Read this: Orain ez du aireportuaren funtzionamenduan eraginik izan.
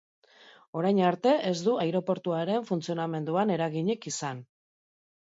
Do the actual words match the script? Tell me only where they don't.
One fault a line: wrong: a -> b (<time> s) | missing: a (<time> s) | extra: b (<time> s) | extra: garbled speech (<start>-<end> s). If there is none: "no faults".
extra: arte (1.1 s)